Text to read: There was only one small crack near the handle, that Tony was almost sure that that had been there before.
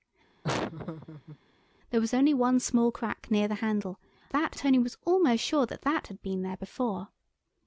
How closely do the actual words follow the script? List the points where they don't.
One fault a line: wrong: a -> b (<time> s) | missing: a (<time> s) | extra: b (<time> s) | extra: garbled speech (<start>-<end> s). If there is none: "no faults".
no faults